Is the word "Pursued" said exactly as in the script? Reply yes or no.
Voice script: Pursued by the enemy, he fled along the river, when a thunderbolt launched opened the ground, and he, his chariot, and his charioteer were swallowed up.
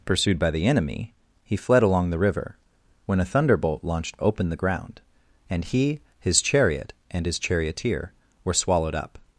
yes